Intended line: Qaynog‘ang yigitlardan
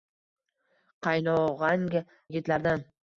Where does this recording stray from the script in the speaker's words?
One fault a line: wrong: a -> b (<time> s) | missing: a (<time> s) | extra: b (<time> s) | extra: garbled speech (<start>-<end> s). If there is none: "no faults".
no faults